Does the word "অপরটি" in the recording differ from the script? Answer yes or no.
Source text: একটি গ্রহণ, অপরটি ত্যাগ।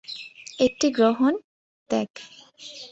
yes